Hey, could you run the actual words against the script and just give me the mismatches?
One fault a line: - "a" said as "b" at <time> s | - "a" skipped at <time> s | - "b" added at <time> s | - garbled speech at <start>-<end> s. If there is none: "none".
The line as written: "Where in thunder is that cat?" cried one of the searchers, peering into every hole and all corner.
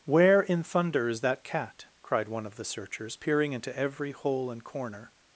- "all" skipped at 4.6 s